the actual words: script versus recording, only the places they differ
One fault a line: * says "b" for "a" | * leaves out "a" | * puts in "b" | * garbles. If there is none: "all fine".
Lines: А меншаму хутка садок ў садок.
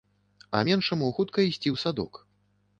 * says "ісці" for "садок"